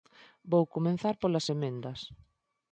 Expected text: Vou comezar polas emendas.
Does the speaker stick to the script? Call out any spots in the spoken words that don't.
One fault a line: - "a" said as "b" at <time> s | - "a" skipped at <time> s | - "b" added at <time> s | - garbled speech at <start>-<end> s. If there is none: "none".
none